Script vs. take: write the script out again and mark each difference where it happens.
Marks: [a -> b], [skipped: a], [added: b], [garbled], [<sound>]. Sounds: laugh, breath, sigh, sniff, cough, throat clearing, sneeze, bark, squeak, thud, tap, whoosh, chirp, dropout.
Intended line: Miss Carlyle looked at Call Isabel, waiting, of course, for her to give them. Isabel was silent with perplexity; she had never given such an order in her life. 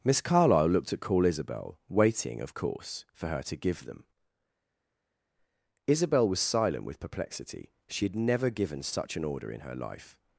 Miss Carlyle looked at Call Isabel, waiting, of course, for her to give them. Isabel was silent with perplexity; she had never given such an order in her life.